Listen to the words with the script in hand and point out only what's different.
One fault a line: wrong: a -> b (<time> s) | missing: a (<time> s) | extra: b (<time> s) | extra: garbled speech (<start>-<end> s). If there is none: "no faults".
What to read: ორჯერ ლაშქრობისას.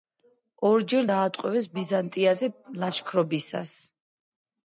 extra: დაატყვევეს ბიზანტიაზე (1.1 s)